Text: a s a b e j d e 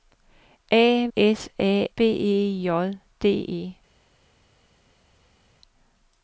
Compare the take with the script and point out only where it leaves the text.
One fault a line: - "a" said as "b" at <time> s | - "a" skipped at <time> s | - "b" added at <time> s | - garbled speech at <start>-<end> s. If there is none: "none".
none